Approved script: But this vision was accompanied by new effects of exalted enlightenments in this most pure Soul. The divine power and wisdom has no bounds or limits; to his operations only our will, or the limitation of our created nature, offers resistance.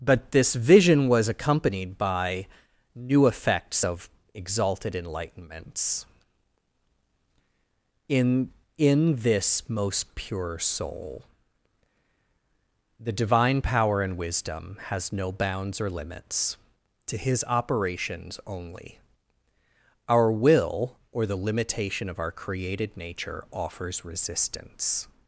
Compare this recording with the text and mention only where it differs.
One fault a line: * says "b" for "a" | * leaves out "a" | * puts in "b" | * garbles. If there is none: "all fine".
* puts in "in"